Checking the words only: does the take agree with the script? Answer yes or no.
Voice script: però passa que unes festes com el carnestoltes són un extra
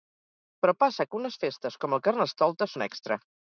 no